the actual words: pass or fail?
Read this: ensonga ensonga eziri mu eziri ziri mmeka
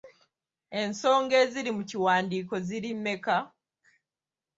fail